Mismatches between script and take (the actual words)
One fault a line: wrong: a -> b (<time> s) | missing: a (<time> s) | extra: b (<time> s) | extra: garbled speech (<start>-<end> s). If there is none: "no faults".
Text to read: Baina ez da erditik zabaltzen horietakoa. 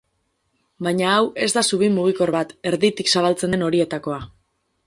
extra: hau (1.2 s)
extra: zubi mugikor bat (1.7 s)
extra: den (3.6 s)